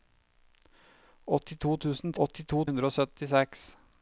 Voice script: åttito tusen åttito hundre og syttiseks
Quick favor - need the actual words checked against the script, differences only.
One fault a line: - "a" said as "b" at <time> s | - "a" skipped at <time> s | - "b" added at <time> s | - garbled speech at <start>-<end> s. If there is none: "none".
none